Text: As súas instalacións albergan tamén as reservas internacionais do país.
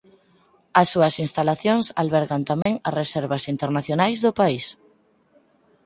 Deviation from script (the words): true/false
false